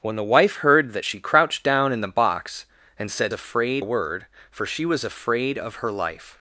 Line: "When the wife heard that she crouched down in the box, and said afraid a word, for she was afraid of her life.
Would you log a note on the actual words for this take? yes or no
no